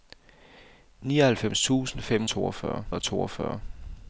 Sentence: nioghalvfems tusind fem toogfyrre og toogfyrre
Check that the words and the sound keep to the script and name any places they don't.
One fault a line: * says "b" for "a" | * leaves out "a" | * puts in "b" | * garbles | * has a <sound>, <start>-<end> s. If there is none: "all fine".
all fine